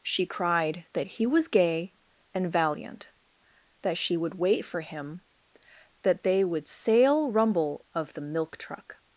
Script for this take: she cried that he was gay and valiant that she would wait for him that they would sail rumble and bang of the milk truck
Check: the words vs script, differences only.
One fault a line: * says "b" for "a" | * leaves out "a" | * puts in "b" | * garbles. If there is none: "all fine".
* leaves out "and bang"